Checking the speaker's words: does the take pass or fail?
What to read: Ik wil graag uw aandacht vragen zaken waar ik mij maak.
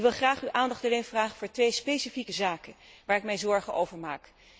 fail